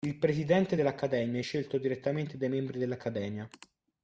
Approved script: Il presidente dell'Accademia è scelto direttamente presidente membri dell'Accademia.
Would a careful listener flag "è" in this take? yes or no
no